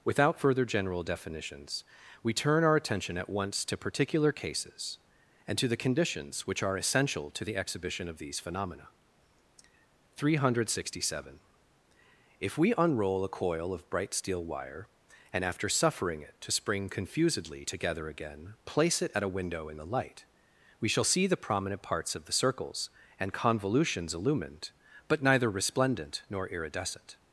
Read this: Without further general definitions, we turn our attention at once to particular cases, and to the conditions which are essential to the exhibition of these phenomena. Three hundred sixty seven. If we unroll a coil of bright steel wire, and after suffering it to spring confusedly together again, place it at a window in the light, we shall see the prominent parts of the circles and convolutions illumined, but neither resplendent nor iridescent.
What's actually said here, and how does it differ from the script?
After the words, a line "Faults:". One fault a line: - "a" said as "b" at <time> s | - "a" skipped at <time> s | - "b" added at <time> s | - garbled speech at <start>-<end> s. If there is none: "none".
Without further general definitions, we turn our attention at once to particular cases, and to the conditions which are essential to the exhibition of these phenomena. Three hundred sixty seven. If we unroll a coil of bright steel wire, and after suffering it to spring confusedly together again, place it at a window in the light, we shall see the prominent parts of the circles and convolutions illumined, but neither resplendent nor iridescent.
Faults:
none